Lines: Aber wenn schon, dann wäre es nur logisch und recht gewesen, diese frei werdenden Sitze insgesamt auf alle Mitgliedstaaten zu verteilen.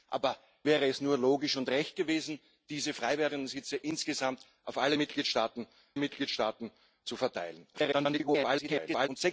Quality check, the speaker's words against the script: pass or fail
fail